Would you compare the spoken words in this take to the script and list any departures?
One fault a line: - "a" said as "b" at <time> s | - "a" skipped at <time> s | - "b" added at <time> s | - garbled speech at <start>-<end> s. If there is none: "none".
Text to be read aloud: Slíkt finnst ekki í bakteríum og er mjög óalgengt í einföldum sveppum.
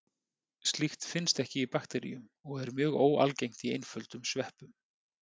none